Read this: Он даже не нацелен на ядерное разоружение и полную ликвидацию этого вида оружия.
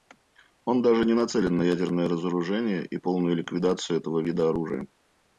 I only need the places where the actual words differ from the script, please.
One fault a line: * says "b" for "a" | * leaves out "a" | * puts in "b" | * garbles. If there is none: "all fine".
all fine